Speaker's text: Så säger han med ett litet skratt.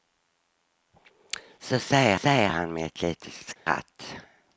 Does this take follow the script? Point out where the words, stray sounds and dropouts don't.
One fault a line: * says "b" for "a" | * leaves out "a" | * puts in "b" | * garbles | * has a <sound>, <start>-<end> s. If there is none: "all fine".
* puts in "säger"
* has a dropout, 3.6-3.7 s